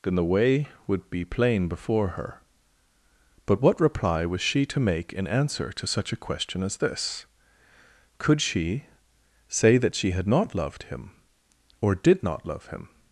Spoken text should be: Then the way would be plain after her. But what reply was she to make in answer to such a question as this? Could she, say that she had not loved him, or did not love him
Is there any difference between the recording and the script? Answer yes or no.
yes